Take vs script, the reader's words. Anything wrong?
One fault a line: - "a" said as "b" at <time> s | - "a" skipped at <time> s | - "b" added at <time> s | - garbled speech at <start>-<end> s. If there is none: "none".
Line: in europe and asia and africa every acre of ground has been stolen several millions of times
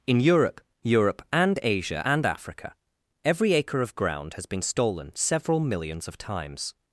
- "europe" added at 0.8 s